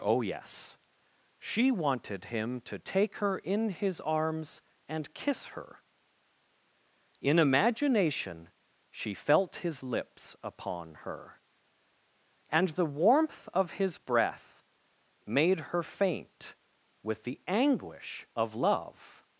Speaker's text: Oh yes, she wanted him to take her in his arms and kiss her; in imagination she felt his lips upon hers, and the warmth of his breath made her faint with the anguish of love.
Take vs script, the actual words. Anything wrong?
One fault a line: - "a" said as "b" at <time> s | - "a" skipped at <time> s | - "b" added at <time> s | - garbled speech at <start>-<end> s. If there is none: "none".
- "hers" said as "her" at 11.0 s